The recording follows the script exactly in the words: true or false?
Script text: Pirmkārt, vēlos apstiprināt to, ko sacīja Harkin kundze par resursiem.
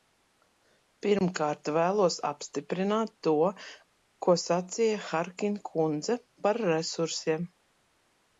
true